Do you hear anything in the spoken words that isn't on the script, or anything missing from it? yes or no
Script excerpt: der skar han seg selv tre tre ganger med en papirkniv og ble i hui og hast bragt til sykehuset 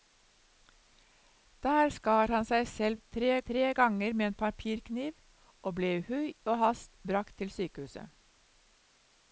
no